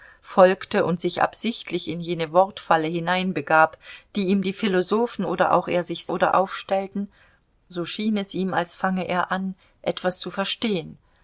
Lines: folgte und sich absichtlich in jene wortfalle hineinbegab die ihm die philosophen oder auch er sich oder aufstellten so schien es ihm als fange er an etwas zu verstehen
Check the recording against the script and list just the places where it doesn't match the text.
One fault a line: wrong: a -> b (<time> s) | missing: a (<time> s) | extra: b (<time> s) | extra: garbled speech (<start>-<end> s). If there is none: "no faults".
no faults